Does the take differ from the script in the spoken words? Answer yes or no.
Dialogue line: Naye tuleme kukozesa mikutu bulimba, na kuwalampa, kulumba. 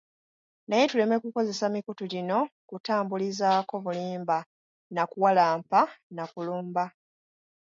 yes